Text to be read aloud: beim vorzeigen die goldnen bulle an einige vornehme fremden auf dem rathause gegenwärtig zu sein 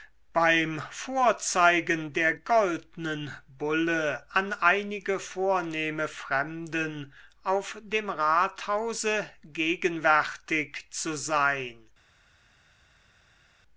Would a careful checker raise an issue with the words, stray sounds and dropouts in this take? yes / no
yes